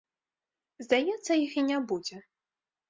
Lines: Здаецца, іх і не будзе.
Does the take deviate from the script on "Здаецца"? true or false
false